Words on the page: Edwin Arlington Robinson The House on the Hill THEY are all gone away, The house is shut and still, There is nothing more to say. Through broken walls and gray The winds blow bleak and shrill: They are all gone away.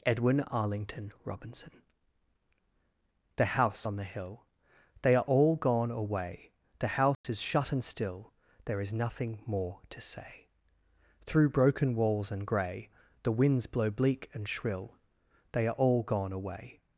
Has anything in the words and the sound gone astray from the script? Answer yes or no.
yes